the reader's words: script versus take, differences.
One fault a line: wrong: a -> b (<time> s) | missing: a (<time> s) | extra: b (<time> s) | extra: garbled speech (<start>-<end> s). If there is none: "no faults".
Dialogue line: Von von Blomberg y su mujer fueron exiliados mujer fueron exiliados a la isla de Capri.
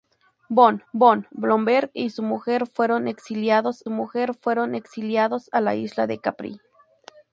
no faults